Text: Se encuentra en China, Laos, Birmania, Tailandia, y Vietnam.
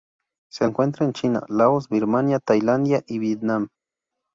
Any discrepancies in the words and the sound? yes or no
no